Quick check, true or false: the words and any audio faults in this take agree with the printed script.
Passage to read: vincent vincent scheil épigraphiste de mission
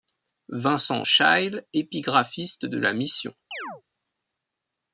false